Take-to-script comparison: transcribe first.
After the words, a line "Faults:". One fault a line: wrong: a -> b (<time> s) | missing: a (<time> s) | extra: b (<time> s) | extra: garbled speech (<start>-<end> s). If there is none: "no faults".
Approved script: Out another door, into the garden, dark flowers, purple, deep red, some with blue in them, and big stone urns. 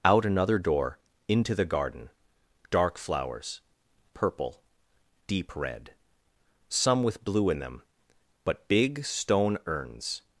Out another door, into the garden, dark flowers, purple, deep red, some with blue in them, but big stone urns.
Faults:
wrong: and -> but (8.4 s)